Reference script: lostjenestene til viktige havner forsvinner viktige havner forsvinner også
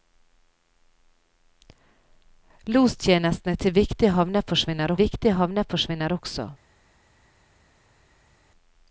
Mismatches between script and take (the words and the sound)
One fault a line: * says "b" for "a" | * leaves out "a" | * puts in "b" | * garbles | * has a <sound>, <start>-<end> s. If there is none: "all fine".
all fine